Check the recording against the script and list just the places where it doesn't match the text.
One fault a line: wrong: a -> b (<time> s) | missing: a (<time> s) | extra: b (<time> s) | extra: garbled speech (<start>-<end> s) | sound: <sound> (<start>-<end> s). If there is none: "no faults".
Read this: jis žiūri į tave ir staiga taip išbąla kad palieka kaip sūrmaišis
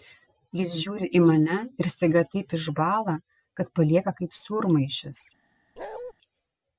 wrong: tave -> mane (1.2 s)
sound: bark (5.8-6.1 s)